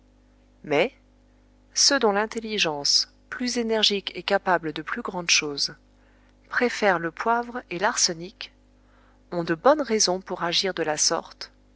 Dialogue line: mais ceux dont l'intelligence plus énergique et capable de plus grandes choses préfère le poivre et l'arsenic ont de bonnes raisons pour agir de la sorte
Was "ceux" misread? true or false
false